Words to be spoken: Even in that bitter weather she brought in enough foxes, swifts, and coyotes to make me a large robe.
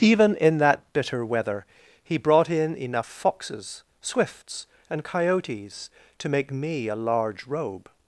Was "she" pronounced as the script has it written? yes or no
no